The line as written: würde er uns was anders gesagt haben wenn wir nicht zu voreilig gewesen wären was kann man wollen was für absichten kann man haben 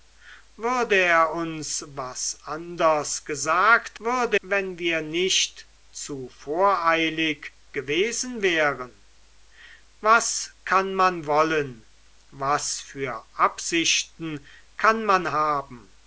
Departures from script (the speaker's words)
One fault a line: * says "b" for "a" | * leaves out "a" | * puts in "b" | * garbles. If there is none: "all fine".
* says "würde" for "haben"